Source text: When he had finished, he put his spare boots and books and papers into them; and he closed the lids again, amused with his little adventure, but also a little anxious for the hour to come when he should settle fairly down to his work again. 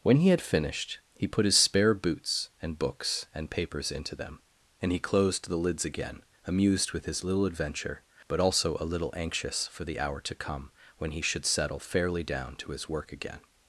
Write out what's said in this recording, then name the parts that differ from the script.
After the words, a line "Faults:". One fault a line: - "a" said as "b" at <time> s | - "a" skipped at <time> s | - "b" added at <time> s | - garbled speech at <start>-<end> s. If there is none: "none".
When he had finished, he put his spare boots and books and papers into them; and he closed the lids again, amused with his little adventure, but also a little anxious for the hour to come when he should settle fairly down to his work again.
Faults:
none